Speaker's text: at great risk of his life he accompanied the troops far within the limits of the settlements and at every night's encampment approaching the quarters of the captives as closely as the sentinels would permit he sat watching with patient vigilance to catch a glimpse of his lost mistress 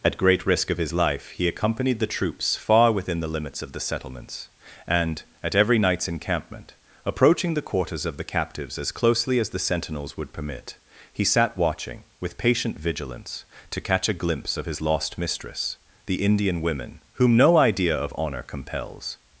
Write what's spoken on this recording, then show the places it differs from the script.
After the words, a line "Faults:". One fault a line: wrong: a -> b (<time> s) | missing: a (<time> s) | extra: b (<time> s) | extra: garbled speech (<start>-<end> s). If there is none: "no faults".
at great risk of his life he accompanied the troops far within the limits of the settlements and at every night's encampment approaching the quarters of the captives as closely as the sentinels would permit he sat watching with patient vigilance to catch a glimpse of his lost mistress the indian women whom no idea of honor compels
Faults:
extra: the indian women whom no idea of honor compels (16.1 s)